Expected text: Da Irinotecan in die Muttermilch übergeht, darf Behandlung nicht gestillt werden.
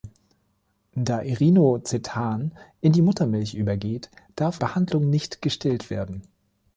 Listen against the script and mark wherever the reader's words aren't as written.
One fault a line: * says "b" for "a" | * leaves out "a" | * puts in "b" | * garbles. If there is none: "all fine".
all fine